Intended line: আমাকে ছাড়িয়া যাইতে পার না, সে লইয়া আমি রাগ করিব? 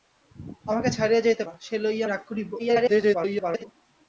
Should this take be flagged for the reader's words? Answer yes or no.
yes